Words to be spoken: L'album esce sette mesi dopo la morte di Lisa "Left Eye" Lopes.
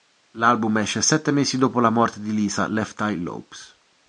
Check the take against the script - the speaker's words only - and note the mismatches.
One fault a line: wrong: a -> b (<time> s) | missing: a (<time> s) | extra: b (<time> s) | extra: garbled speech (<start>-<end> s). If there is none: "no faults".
no faults